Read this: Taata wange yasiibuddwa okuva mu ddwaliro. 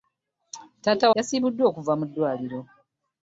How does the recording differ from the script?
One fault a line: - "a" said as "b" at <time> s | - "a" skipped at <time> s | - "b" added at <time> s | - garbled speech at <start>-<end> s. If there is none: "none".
- "wange" skipped at 1.1 s